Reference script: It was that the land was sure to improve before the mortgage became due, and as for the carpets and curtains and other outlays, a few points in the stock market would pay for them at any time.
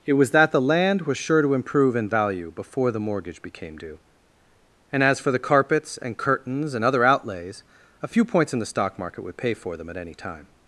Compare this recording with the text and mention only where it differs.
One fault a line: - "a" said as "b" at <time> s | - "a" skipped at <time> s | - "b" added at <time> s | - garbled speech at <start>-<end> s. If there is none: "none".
- "in value" added at 1.9 s